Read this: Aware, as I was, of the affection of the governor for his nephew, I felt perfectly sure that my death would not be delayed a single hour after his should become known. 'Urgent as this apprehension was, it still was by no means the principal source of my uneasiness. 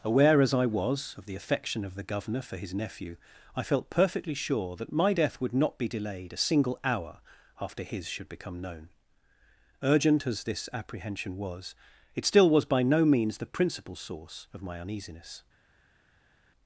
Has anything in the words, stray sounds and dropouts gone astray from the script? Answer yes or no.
no